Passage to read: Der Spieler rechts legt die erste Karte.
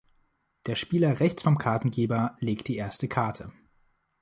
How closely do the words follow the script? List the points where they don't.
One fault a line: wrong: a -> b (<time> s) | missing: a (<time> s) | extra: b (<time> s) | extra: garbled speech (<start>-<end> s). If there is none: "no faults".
extra: vom Kartengeber (1.4 s)